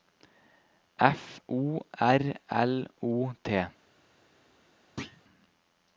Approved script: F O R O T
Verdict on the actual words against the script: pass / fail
fail